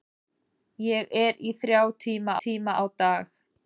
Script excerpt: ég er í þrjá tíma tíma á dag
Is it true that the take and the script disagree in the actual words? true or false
false